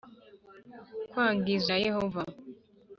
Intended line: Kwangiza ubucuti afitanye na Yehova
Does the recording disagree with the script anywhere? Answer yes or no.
yes